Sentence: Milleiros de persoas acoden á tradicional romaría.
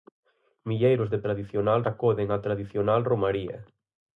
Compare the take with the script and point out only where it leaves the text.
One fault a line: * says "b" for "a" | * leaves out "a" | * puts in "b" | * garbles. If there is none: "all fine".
* says "tradicional" for "persoas"